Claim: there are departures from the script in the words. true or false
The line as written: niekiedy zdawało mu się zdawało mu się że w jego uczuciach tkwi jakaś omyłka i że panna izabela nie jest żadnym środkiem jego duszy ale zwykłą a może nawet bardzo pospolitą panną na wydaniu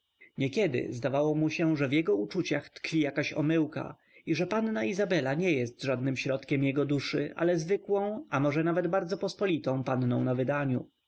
true